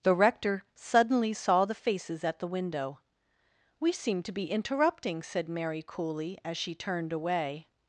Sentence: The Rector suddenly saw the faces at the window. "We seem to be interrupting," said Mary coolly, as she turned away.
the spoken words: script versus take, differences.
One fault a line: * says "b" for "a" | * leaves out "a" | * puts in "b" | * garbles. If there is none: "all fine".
all fine